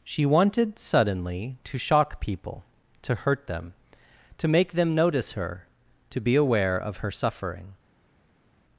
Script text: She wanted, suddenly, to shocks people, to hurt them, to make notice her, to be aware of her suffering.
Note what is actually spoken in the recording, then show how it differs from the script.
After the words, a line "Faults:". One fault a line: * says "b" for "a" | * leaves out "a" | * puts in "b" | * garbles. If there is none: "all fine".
She wanted, suddenly, to shock people, to hurt them, to make them notice her, to be aware of her suffering.
Faults:
* says "shock" for "shocks"
* puts in "them"